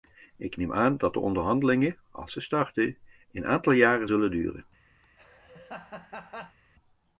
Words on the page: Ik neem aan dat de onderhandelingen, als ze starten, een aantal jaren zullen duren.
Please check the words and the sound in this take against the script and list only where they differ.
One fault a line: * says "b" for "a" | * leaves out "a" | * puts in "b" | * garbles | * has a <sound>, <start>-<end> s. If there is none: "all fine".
* has a laugh, 5.0-6.6 s